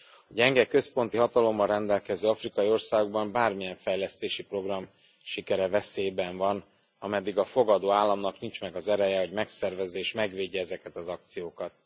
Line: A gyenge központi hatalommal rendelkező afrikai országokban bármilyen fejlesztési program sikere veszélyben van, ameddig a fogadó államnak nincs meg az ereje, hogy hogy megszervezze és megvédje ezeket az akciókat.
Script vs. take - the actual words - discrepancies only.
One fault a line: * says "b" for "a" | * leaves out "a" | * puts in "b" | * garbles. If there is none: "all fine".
* leaves out "hogy"